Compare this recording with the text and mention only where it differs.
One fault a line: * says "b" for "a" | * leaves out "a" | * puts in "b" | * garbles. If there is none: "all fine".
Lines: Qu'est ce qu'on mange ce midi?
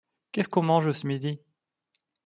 all fine